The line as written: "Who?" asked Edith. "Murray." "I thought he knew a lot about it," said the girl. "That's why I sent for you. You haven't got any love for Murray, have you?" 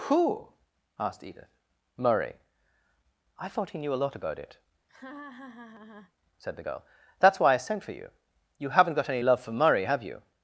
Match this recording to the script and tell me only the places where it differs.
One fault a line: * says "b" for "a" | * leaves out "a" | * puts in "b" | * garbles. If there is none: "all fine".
all fine